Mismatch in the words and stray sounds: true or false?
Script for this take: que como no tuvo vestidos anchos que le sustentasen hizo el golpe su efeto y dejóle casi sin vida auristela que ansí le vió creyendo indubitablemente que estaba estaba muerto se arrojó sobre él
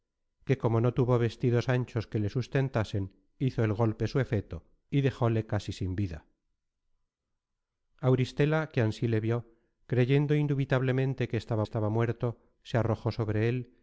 false